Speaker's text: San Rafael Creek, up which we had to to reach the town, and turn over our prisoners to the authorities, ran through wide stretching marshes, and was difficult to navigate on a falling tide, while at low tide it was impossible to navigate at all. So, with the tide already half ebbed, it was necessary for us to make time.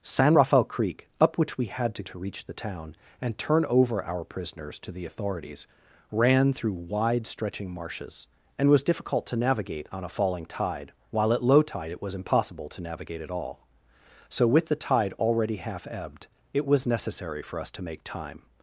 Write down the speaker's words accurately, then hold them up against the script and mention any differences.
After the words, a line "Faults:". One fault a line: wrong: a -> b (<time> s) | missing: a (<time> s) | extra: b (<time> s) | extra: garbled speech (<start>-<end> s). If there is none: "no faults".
San Rafael Creek, up which we had to to reach the town, and turn over our prisoners to the authorities, ran through wide stretching marshes, and was difficult to navigate on a falling tide, while at low tide it was impossible to navigate at all. So, with the tide already half ebbed, it was necessary for us to make time.
Faults:
no faults